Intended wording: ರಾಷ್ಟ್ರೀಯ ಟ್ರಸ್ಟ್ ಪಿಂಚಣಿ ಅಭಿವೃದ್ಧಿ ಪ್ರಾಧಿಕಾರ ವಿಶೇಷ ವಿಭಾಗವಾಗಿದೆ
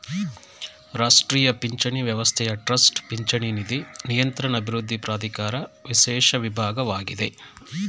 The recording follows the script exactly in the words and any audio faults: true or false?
false